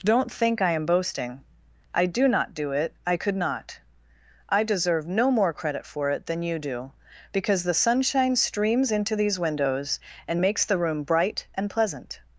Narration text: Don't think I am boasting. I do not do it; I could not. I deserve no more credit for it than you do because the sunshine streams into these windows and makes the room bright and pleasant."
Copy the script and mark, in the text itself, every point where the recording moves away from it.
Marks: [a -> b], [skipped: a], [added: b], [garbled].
Don't think I am boasting. I do not do it; I could not. I deserve no more credit for it than you do because the sunshine streams into these windows and makes the room bright and pleasant."